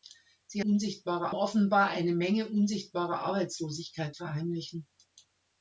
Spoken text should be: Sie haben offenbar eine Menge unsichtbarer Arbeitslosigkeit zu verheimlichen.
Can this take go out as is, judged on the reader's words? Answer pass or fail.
fail